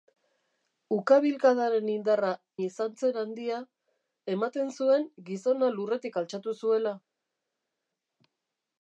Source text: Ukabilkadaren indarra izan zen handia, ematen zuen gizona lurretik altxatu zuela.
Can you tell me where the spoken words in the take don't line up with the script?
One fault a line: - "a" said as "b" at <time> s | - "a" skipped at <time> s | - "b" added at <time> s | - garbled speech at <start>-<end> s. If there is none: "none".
none